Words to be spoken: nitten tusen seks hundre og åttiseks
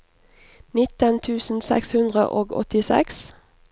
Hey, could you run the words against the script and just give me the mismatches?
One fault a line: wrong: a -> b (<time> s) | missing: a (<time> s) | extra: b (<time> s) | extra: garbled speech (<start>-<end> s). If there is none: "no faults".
no faults